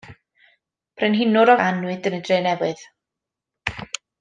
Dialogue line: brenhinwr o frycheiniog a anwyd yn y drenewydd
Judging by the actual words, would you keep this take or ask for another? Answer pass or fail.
fail